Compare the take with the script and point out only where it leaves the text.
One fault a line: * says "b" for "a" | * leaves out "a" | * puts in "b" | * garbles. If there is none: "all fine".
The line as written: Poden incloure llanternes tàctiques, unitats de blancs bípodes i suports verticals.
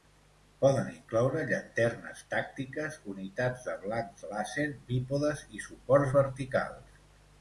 * puts in "làser"